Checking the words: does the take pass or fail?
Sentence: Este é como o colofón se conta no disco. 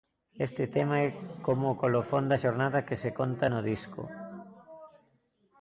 fail